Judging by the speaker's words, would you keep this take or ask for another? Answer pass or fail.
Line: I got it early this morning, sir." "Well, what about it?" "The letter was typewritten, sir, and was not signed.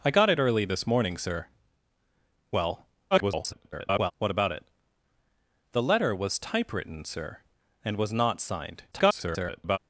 fail